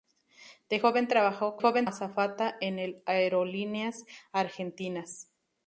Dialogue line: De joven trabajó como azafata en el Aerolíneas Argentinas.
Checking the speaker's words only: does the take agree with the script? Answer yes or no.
no